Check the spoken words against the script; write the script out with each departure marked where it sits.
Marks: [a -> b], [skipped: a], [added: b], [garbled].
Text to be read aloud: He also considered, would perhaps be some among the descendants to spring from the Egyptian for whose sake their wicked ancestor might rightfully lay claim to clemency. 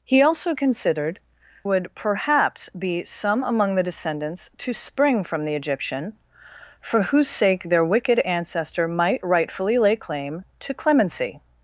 He also considered, would perhaps be some among the descendants to spring from the Egyptian for whose sake their wicked ancestor might rightfully lay claim to clemency.